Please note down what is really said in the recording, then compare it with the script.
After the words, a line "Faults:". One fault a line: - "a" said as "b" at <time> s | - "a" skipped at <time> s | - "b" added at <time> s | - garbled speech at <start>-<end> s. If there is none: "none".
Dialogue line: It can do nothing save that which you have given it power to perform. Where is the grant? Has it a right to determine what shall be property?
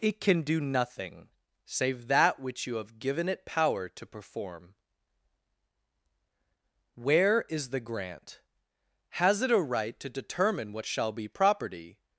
It can do nothing save that which you have given it power to perform. Where is the grant? Has it a right to determine what shall be property?
Faults:
none